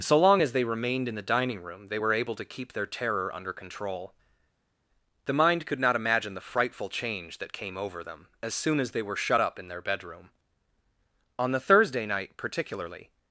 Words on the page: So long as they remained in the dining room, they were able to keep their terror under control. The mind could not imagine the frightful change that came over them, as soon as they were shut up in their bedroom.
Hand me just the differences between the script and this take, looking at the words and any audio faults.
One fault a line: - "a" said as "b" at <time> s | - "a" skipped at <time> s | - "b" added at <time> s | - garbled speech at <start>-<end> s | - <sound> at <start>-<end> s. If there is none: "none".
- "On the Thursday night particularly" added at 11.4 s